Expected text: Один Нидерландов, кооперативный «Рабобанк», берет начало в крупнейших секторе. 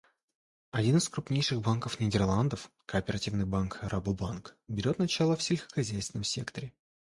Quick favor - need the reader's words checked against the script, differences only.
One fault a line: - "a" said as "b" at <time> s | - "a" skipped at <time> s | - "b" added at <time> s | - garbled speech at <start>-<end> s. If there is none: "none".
- "из крупнейших банков" added at 1.0 s
- "банк" added at 3.4 s
- "крупнейших" said as "сельскохозяйственном" at 5.4 s